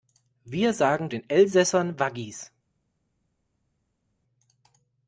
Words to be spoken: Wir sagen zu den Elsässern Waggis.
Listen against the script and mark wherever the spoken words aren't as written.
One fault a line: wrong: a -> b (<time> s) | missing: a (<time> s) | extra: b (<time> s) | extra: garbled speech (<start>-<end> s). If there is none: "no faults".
missing: zu (1.1 s)